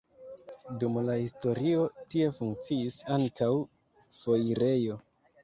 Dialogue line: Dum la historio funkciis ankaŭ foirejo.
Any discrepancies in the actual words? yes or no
yes